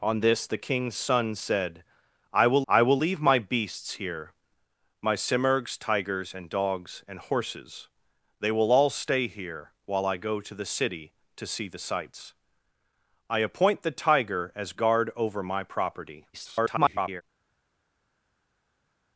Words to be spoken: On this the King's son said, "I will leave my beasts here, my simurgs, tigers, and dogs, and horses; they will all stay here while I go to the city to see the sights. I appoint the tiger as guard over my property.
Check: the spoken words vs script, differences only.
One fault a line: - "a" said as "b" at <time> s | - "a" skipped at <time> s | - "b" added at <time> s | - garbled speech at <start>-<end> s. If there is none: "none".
- "I will" added at 2.7 s
- garbled speech at 16.3-17.2 s